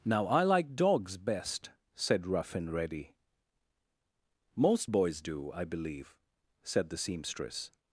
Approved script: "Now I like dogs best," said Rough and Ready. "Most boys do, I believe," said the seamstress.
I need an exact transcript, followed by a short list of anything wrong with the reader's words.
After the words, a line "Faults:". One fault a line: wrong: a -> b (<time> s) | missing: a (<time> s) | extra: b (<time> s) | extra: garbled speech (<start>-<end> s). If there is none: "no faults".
"Now I like dogs best," said Rough and Ready. "Most boys do, I believe," said the seamstress.
Faults:
no faults